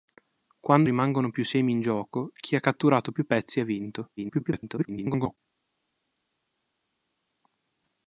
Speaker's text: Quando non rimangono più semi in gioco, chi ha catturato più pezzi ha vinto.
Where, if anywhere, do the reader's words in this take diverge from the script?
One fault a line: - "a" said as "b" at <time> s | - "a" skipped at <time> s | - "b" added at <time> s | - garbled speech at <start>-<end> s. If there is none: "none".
- "non" skipped at 0.9 s
- garbled speech at 4.2-5.4 s